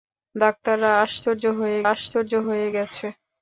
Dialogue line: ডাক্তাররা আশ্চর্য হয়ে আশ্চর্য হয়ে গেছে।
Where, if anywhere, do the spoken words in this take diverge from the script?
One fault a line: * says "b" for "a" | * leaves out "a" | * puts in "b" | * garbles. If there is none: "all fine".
all fine